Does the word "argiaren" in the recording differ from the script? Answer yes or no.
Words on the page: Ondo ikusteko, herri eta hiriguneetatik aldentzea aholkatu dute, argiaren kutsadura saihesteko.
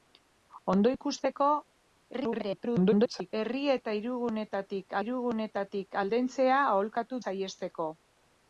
yes